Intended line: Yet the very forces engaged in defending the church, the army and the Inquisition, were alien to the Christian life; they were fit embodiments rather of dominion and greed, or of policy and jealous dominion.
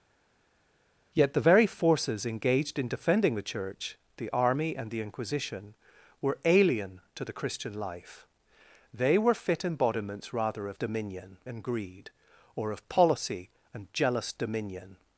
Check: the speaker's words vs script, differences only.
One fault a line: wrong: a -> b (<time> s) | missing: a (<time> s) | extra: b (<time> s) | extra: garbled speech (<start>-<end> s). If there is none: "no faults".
no faults